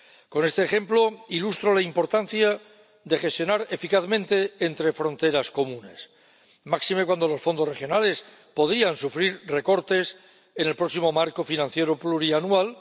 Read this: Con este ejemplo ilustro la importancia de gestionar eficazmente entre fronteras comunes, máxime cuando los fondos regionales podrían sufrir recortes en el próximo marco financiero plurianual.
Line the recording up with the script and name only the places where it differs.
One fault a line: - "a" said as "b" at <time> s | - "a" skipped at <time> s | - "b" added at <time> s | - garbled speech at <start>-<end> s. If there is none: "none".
none